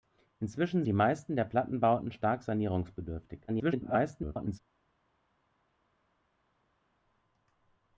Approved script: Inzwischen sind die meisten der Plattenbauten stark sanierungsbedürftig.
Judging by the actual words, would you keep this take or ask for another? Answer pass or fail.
fail